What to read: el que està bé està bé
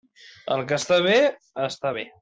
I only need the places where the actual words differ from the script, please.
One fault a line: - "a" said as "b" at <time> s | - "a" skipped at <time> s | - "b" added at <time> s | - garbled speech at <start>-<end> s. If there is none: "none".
none